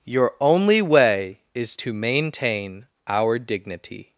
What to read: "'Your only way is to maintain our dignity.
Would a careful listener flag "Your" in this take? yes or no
no